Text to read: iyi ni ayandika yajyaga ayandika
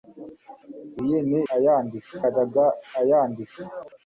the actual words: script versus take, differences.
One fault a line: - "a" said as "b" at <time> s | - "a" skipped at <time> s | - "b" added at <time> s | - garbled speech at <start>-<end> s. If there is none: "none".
none